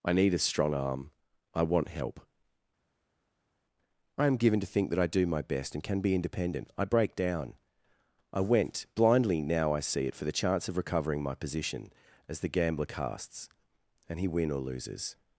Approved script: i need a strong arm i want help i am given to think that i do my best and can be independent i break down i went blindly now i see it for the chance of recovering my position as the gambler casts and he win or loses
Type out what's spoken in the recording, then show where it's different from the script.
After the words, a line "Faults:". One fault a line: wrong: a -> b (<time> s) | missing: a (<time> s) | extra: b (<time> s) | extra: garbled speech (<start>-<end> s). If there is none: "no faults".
i need a strong arm i want help i am given to think that i do my best and can be independent i break down i went blindly now i see it for the chance of recovering my position as the gambler casts and he win or loses
Faults:
no faults